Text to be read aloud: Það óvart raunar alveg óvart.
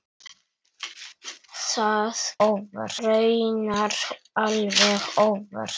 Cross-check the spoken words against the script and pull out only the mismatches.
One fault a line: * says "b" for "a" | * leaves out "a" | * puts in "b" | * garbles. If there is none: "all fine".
all fine